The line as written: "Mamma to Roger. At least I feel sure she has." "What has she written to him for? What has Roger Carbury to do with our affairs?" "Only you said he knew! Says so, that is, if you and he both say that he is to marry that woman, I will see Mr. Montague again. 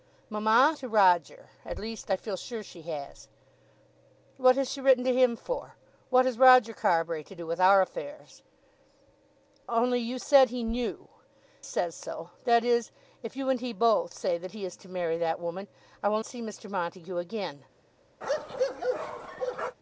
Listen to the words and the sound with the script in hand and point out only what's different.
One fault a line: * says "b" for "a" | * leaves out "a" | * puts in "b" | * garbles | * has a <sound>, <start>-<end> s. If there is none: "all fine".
* has a bark, 18.2-19.8 s